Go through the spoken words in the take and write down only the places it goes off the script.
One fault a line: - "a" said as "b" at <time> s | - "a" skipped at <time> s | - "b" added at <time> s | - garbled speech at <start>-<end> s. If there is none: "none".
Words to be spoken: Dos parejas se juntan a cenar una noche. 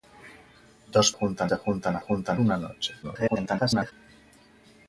- "parejas" said as "juntan" at 1.1 s
- "cenar" said as "juntan" at 2.0 s
- garbled speech at 3.0-3.9 s